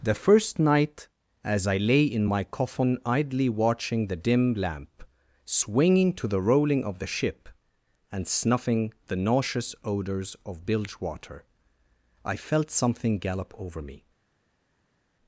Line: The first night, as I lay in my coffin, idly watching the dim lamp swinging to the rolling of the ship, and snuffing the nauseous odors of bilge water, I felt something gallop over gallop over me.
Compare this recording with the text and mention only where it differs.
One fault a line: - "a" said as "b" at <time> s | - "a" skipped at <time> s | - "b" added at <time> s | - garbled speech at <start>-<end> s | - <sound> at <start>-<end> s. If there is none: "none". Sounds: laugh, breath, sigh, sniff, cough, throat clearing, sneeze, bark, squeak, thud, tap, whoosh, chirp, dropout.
- "gallop over" skipped at 13.8 s